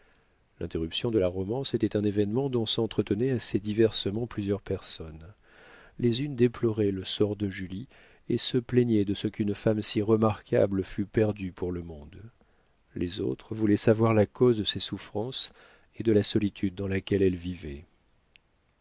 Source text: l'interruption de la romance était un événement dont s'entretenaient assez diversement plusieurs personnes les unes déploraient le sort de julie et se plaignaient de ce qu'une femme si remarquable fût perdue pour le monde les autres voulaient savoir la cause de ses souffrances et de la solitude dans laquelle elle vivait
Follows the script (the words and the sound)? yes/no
yes